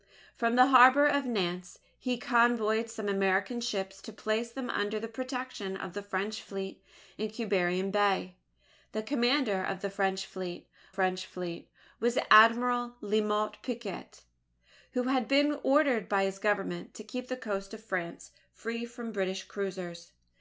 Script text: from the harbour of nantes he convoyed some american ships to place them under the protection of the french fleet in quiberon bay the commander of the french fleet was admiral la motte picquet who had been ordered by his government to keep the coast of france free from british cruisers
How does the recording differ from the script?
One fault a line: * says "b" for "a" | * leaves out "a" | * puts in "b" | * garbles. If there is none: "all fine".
* puts in "french fleet"